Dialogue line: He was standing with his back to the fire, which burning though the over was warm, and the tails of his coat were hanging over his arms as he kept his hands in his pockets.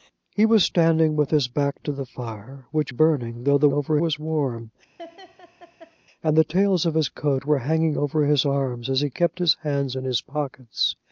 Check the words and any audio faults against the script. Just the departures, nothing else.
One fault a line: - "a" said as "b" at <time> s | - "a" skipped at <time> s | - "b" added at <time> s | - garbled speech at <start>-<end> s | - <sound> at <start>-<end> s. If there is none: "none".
- laugh at 5.0-6.0 s